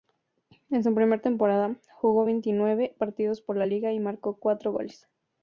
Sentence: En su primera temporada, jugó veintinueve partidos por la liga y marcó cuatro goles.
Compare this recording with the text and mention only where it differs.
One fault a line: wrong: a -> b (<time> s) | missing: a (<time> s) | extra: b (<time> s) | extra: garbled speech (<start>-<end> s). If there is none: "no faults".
no faults